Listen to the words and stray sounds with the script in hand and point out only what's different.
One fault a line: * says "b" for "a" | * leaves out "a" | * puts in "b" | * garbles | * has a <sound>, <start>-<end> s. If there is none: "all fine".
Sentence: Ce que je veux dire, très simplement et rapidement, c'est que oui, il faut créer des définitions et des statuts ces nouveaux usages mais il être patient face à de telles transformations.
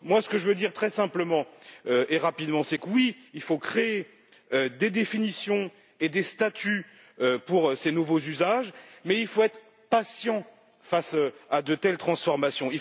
* puts in "pour"
* puts in "faut"